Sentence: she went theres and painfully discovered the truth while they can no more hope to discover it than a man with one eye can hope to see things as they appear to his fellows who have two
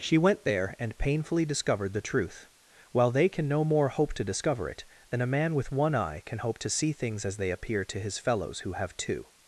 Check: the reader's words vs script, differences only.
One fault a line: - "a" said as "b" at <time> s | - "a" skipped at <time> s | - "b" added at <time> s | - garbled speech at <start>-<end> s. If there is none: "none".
- "theres" said as "there" at 0.5 s